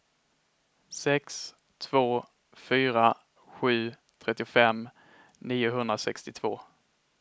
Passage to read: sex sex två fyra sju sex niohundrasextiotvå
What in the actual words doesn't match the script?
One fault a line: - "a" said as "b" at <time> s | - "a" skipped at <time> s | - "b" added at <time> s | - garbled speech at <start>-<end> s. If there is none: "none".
- "sex" skipped at 1.6 s
- "sex" said as "trettiofem" at 4.2 s